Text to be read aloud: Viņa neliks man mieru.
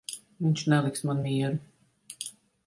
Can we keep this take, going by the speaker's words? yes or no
no